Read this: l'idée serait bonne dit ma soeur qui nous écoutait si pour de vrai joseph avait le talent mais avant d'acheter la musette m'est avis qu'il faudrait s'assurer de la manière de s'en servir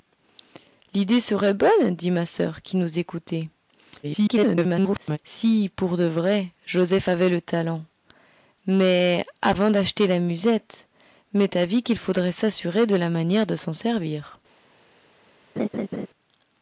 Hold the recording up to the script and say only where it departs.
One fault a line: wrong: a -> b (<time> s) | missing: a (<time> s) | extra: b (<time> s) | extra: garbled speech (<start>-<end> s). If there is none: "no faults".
extra: garbled speech (4.0-5.2 s)